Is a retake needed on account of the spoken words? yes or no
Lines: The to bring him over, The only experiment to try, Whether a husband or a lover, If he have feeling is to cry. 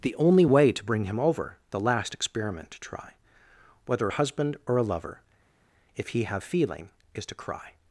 yes